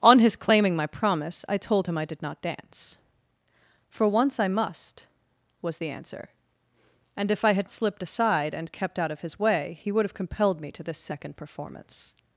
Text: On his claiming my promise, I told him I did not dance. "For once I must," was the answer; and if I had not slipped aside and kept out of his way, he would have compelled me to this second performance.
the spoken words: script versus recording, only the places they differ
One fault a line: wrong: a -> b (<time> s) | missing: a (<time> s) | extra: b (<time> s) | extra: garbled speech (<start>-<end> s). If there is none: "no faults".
missing: not (7.7 s)